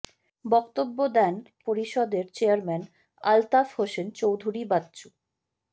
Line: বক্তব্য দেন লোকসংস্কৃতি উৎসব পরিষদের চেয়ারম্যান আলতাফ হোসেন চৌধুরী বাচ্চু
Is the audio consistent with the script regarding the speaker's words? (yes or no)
no